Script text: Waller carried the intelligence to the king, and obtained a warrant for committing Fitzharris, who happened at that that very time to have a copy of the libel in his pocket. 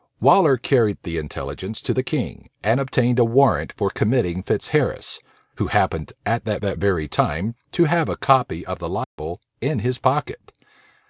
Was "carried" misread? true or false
false